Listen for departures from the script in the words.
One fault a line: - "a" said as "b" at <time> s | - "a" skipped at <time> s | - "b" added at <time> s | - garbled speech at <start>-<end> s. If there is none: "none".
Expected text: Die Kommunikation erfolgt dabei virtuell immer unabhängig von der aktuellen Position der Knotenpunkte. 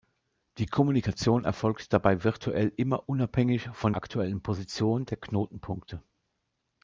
- "der" skipped at 3.9 s